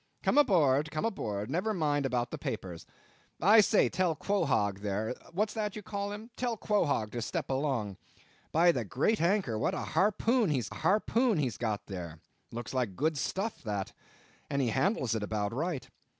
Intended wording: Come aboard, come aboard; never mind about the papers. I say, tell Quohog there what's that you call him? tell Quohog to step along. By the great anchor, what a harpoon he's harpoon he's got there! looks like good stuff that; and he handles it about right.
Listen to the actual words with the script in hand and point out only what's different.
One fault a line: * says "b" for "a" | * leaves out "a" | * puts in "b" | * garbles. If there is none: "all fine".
all fine